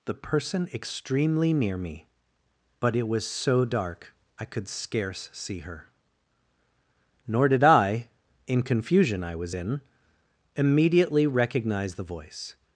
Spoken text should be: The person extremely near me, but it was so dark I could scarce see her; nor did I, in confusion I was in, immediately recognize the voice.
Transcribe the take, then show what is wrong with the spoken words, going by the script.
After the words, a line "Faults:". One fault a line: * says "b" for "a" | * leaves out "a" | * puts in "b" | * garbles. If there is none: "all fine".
The person extremely near me, but it was so dark I could scarce see her; nor did I, in confusion I was in, immediately recognize the voice.
Faults:
all fine